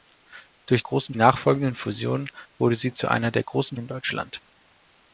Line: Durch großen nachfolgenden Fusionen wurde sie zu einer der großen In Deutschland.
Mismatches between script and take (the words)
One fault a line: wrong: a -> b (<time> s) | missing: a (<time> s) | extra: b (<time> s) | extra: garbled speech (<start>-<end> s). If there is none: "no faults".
no faults